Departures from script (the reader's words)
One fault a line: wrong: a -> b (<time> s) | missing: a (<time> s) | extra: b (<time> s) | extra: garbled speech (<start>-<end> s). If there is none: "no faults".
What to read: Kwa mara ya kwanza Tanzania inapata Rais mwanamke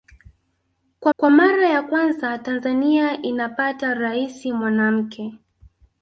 extra: kwa (1.2 s)